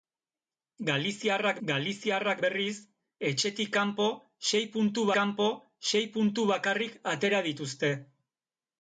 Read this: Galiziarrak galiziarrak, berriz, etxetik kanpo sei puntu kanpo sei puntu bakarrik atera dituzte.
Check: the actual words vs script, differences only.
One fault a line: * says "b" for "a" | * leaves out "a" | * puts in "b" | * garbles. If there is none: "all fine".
all fine